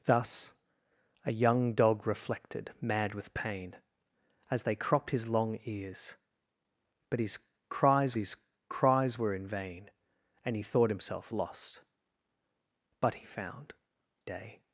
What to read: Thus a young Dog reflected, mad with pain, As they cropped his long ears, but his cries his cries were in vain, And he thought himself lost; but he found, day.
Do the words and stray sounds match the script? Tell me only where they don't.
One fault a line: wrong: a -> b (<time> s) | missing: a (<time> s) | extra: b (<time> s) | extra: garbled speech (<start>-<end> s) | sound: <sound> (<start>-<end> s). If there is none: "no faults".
no faults